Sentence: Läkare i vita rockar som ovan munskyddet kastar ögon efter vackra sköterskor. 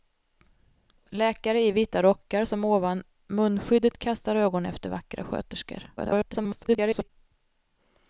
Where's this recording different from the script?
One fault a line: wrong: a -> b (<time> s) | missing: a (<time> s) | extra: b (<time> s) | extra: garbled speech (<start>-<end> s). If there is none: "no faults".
extra: garbled speech (6.0-7.1 s)